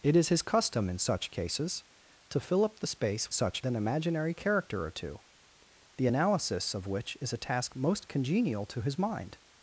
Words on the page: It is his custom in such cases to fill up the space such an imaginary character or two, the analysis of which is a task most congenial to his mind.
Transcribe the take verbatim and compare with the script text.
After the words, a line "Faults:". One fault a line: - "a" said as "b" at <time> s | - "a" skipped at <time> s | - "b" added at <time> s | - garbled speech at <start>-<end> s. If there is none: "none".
It is his custom in such cases to fill up the space such an imaginary character or two, the analysis of which is a task most congenial to his mind.
Faults:
none